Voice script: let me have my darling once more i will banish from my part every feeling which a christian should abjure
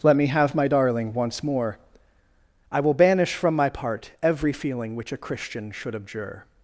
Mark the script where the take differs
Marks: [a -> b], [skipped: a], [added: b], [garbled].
let me have my darling once more i will banish from my part every feeling which a christian should abjure